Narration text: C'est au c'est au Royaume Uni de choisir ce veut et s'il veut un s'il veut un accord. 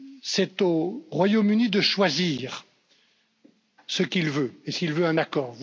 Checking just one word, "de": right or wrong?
right